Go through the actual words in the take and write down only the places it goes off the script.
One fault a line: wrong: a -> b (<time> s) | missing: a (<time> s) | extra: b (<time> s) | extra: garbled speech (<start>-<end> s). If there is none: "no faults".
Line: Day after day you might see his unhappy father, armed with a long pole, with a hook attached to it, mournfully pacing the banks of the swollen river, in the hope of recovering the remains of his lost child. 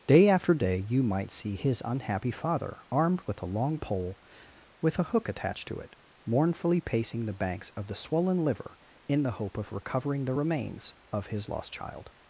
wrong: river -> liver (8.4 s)